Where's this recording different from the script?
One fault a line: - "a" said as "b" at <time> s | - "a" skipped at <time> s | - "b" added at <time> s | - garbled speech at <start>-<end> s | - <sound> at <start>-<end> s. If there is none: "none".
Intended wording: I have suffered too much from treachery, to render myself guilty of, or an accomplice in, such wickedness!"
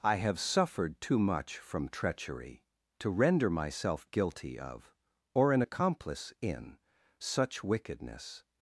none